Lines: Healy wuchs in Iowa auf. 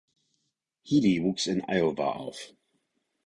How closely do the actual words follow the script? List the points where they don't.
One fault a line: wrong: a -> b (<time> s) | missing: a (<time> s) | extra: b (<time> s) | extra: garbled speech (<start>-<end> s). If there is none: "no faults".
no faults